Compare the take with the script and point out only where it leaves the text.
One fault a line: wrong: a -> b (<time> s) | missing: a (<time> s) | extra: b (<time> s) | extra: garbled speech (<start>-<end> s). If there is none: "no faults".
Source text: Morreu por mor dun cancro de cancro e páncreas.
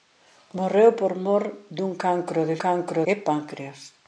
no faults